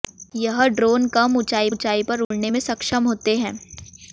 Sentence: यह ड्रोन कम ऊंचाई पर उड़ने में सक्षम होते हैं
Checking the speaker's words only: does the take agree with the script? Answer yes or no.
no